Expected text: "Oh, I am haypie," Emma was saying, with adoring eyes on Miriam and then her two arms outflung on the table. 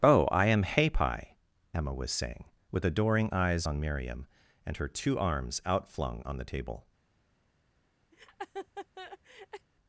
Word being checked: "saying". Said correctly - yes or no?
yes